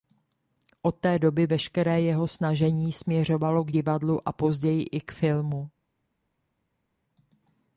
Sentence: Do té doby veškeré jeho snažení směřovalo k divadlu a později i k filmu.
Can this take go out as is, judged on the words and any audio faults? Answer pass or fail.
fail